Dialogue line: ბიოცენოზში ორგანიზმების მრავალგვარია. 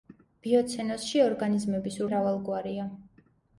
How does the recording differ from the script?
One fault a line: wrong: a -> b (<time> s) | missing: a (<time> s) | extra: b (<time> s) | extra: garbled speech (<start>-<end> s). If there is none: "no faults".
no faults